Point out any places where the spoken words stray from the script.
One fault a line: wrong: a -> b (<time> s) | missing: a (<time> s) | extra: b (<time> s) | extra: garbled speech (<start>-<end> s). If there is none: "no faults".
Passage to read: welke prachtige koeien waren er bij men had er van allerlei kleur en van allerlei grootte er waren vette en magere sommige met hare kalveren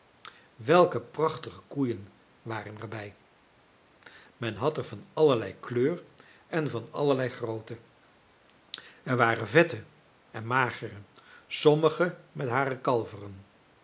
no faults